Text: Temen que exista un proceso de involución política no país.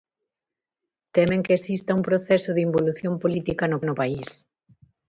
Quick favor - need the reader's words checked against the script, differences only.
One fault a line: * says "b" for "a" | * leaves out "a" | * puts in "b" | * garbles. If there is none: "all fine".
* puts in "no"